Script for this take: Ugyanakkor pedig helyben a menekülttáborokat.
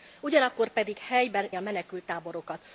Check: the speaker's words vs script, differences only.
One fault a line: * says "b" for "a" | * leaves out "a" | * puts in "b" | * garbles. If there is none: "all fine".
all fine